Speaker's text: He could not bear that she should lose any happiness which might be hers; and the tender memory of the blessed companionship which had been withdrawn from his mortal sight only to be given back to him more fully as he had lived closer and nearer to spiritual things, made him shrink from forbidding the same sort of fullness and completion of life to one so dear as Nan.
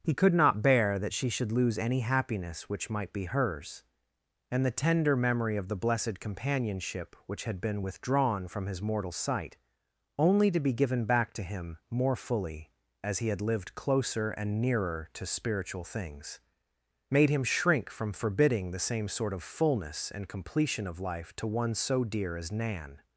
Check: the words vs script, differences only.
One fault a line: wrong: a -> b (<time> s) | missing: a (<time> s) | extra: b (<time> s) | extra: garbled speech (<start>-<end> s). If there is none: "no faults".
no faults